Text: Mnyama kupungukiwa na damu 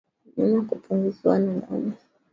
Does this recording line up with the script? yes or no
yes